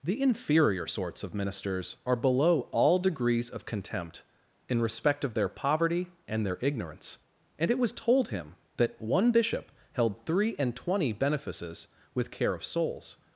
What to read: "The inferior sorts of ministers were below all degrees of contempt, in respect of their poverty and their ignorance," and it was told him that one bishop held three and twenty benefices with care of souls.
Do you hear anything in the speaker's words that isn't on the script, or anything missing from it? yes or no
yes